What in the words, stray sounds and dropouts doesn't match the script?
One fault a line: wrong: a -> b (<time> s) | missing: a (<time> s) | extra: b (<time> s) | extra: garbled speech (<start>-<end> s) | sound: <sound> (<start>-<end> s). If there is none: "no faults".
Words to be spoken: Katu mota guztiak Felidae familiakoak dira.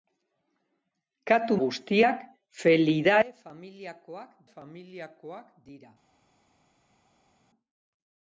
missing: mota (1.6 s)
extra: familiakoak (4.5 s)